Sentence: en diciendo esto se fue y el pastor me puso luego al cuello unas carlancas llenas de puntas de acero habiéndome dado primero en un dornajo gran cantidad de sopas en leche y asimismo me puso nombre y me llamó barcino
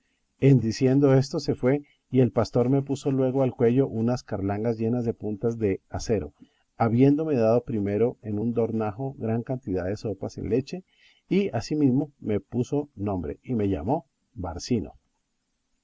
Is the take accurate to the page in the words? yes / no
yes